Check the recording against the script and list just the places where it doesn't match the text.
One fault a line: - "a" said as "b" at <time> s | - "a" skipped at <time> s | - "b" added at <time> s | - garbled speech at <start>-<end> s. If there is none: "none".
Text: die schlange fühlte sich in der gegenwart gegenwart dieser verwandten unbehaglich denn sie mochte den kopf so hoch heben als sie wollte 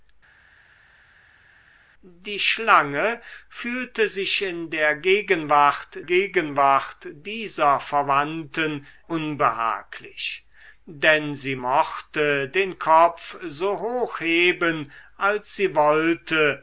none